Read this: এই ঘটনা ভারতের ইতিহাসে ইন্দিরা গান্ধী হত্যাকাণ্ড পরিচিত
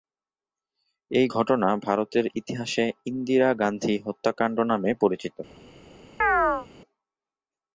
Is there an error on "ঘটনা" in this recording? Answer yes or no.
no